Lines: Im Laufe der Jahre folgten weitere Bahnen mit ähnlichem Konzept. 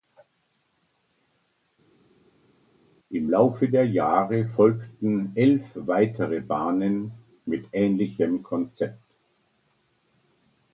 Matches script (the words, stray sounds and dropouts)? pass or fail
fail